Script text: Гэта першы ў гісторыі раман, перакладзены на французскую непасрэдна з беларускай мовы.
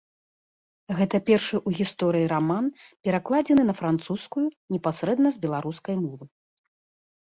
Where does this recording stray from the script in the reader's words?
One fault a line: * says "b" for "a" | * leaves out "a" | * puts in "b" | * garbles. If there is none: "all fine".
all fine